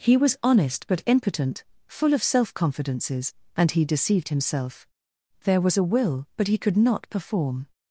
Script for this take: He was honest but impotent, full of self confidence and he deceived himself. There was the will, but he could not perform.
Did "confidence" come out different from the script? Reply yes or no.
yes